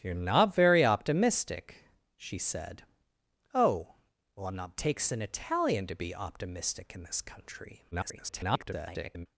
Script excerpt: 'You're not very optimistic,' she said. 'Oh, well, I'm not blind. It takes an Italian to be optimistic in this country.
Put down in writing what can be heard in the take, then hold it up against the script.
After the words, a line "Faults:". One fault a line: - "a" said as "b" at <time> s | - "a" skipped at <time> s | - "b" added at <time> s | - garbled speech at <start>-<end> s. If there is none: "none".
'You're not very optimistic,' she said. 'Oh, well, I'm not takes an Italian to be optimistic in this country. [garbled]
Faults:
- "blind It" skipped at 4.8 s
- garbled speech at 7.9-9.3 s